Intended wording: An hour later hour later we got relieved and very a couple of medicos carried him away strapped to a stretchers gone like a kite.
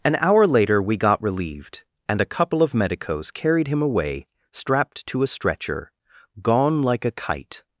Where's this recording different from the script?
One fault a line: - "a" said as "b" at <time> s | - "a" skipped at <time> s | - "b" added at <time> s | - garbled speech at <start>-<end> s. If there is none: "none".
- "hour later" skipped at 0.8 s
- "very" skipped at 2.2 s
- "stretchers" said as "stretcher" at 5.3 s